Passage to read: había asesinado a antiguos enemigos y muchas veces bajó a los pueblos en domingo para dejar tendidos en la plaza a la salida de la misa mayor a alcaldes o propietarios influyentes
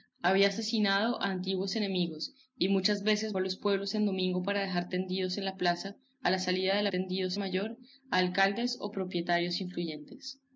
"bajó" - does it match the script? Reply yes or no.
no